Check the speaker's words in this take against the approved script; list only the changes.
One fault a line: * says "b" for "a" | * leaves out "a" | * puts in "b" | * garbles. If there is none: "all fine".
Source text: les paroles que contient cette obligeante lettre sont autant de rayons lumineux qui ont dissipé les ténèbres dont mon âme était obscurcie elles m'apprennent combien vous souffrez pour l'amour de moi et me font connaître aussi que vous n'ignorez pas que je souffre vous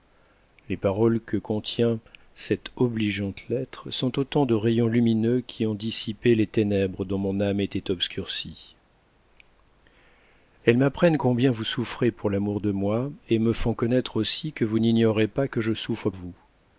all fine